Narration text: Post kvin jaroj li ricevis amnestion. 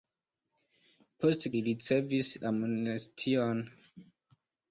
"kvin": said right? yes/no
no